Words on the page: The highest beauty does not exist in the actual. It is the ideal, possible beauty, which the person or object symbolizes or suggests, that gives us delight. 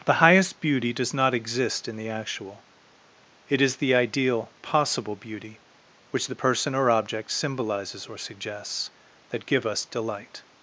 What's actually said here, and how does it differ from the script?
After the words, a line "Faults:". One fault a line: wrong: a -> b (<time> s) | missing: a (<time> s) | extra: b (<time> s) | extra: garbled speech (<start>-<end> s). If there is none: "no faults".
The highest beauty does not exist in the actual. It is the ideal, possible beauty, which the person or object symbolizes or suggests, that give us delight.
Faults:
wrong: gives -> give (9.4 s)